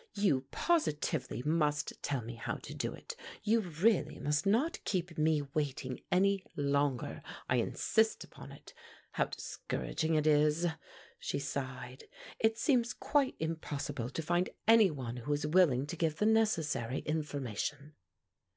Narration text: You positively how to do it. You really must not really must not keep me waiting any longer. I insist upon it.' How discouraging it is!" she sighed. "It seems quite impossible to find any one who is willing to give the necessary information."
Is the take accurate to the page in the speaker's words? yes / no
no